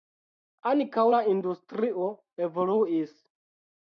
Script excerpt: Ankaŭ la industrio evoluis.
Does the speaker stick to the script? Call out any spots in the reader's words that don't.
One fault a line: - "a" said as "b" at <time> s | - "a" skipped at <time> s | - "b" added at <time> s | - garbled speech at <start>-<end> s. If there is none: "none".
none